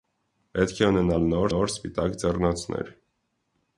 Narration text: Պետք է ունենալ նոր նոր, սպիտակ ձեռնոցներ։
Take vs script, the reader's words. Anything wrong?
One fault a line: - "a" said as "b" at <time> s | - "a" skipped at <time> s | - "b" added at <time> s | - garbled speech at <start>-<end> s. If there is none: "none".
none